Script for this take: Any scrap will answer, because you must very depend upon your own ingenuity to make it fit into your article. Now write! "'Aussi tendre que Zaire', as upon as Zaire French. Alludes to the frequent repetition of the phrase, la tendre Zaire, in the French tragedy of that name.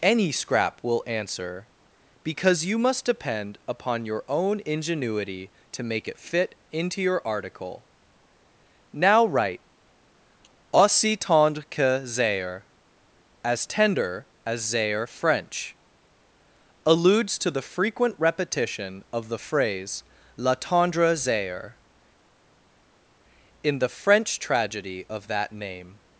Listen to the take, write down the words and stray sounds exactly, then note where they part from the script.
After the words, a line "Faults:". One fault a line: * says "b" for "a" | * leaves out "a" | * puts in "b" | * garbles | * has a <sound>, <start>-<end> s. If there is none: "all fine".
Any scrap will answer, because you must depend upon your own ingenuity to make it fit into your article. Now write! "'Aussi tendre que Zaire', as tender as Zaire French. Alludes to the frequent repetition of the phrase, la tendre Zaire, in the French tragedy of that name.
Faults:
* leaves out "very"
* says "tender" for "upon"